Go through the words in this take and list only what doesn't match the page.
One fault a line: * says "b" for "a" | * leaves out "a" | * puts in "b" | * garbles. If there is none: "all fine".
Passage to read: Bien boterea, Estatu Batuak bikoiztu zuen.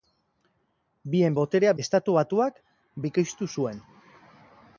all fine